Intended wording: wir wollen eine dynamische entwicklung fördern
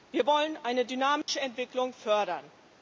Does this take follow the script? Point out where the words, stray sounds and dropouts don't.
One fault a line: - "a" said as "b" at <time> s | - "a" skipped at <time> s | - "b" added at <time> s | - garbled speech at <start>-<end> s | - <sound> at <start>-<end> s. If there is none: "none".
- dropout at 1.2-1.3 s